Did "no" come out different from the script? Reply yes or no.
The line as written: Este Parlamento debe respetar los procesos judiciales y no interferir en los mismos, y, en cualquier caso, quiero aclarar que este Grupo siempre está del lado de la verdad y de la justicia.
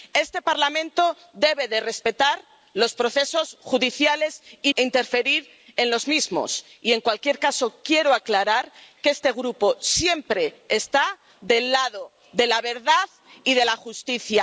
yes